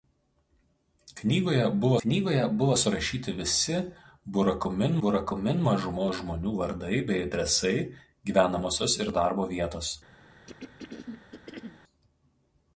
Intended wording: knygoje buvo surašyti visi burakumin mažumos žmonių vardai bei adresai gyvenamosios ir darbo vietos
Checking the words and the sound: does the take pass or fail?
fail